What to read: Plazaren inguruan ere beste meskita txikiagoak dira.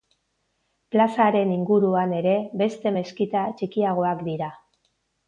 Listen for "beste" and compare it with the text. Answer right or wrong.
right